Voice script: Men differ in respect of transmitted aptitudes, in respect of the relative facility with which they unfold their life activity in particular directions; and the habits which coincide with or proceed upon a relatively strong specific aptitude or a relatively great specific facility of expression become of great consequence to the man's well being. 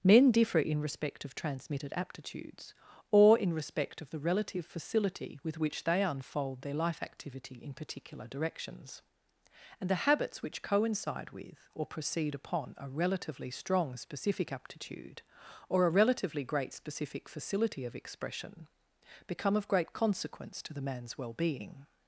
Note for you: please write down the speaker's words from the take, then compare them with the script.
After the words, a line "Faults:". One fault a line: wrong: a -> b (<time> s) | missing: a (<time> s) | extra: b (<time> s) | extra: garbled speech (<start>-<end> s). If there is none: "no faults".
Men differ in respect of transmitted aptitudes, or in respect of the relative facility with which they unfold their life activity in particular directions; and the habits which coincide with or proceed upon a relatively strong specific aptitude or a relatively great specific facility of expression become of great consequence to the man's well being.
Faults:
extra: or (3.1 s)